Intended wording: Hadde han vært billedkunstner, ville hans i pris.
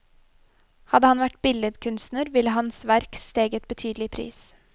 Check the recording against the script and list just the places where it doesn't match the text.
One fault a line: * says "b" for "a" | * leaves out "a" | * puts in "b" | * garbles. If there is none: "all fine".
* puts in "verk steget betydelig"